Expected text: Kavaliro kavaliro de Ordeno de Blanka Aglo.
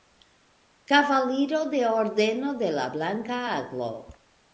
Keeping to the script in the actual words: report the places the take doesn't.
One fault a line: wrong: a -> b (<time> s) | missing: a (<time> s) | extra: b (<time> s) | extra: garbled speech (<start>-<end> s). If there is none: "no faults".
missing: kavaliro (1.6 s)
extra: la (2.7 s)